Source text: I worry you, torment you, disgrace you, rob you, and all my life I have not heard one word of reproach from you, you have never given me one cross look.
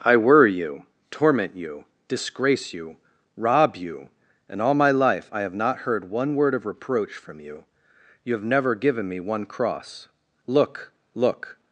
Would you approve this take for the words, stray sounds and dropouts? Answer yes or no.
no